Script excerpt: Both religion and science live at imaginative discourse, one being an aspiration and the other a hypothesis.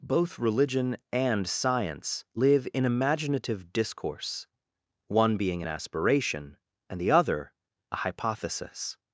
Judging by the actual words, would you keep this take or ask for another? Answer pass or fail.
fail